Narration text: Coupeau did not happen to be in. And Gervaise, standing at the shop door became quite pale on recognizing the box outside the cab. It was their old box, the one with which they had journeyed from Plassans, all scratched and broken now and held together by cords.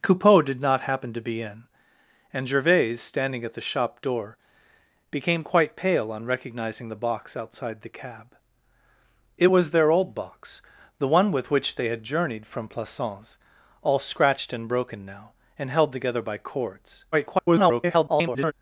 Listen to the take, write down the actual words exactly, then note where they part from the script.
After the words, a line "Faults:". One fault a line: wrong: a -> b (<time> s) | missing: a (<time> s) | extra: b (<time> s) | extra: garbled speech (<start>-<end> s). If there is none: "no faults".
Coupeau did not happen to be in. And Gervaise, standing at the shop door became quite pale on recognizing the box outside the cab. It was their old box, the one with which they had journeyed from Plassans, all scratched and broken now and held together by cords. [garbled]
Faults:
extra: garbled speech (17.1-18.5 s)